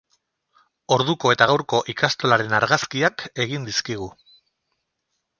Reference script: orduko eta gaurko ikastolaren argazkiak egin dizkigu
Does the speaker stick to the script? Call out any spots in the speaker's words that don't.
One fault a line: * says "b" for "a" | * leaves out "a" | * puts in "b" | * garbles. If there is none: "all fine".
all fine